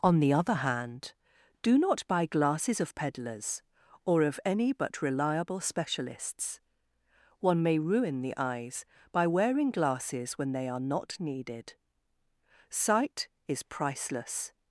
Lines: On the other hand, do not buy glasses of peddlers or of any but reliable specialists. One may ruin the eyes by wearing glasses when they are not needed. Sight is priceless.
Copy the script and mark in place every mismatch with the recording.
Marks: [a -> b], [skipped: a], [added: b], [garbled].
On the other hand, do not buy glasses of peddlers or of any but reliable specialists. One may ruin the eyes by wearing glasses when they are not needed. Sight is priceless.